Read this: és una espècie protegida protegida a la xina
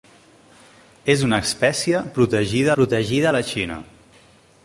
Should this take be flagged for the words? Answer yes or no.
no